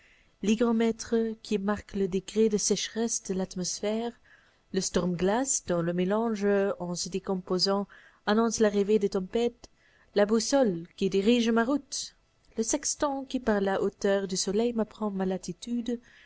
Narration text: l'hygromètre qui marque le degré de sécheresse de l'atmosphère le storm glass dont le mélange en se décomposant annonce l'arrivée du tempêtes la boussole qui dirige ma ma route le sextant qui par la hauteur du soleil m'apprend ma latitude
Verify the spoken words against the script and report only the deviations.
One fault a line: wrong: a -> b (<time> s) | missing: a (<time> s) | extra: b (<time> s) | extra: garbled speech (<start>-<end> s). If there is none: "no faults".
wrong: du -> des (9.0 s)
missing: ma (11.6 s)